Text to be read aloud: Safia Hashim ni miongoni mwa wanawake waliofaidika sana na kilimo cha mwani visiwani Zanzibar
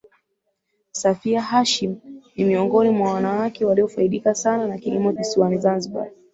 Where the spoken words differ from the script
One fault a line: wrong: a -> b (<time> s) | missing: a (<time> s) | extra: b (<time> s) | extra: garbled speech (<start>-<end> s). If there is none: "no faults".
missing: cha mwani (5.1 s)